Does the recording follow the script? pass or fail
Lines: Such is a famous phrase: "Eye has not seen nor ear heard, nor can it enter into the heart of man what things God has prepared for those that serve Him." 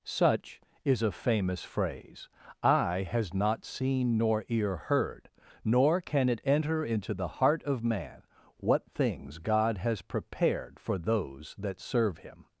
pass